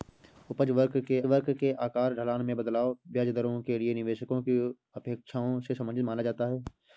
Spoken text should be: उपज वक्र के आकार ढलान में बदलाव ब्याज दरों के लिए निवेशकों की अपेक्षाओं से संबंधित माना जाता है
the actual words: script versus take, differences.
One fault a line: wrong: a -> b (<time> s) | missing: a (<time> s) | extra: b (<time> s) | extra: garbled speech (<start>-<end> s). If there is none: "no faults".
extra: वक्र के (1.2 s)